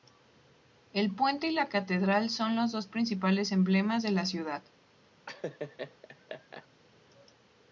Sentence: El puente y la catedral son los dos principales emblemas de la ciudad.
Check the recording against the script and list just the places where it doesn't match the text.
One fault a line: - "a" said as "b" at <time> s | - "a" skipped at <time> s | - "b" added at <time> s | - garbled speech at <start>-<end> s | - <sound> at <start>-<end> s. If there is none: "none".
- laugh at 5.3-6.7 s